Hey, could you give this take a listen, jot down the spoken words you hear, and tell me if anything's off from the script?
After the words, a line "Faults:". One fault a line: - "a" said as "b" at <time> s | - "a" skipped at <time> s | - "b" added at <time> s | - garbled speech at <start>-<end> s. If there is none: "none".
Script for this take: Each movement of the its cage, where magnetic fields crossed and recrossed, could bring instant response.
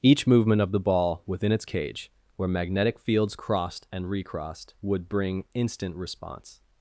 Each movement of the ball within its cage, where magnetic fields crossed and recrossed, would bring instant response.
Faults:
- "ball within" added at 0.8 s
- "could" said as "would" at 4.8 s